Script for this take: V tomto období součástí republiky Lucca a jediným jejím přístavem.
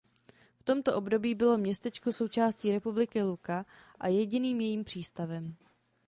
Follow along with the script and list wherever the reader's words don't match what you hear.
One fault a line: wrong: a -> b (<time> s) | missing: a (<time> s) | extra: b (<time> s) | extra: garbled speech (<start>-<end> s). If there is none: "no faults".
extra: bylo městečko (1.4 s)